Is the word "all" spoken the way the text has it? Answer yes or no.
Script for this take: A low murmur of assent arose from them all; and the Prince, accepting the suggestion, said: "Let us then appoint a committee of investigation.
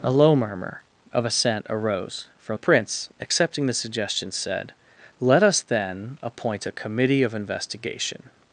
no